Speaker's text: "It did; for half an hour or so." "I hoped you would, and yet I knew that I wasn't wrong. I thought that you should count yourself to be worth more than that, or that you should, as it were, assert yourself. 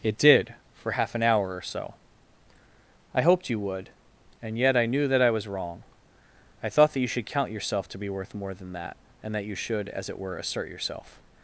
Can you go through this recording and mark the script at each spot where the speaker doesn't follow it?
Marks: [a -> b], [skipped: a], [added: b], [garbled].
"It did; for half an hour or so." "I hoped you would, and yet I knew that I [wasn't -> was] wrong. I thought that you should count yourself to be worth more than that, [or -> and] that you should, as it were, assert yourself.